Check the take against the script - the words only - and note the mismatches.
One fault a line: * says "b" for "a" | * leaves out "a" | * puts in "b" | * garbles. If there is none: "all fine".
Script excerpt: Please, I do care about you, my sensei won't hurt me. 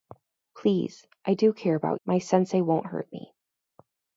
* leaves out "you"